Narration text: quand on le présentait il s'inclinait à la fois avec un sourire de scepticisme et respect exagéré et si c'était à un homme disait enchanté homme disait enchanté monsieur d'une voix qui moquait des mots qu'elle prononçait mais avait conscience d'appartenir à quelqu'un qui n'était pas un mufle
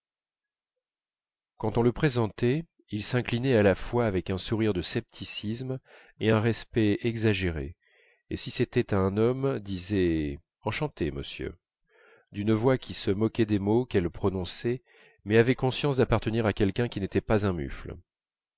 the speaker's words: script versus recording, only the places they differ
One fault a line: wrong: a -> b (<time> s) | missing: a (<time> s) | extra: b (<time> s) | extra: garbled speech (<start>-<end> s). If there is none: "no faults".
extra: un (6.3 s)
missing: homme disait enchanté (11.1 s)
extra: se (12.9 s)